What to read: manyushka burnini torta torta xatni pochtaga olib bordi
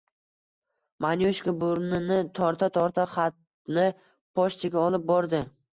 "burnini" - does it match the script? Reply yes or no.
yes